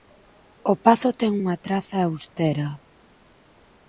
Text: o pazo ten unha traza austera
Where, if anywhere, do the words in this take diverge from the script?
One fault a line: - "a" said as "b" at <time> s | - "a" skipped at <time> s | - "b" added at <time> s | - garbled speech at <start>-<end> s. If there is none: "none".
none